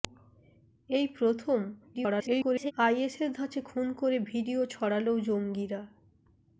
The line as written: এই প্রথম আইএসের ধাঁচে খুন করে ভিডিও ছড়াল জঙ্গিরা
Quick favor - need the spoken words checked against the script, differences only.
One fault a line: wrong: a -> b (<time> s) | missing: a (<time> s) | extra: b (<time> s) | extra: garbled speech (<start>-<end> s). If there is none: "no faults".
extra: garbled speech (1.9-2.7 s)